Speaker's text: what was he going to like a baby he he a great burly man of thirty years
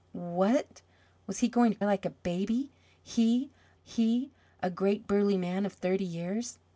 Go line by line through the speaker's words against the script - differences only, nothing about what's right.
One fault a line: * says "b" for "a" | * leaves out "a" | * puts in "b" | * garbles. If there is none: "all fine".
all fine